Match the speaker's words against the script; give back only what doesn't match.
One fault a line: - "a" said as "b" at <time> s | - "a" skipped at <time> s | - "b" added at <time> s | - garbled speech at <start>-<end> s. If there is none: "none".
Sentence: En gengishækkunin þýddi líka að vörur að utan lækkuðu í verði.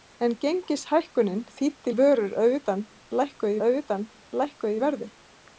- "líka" said as "að vörur" at 1.9 s
- "vörur" said as "utan lækkuðu" at 2.6 s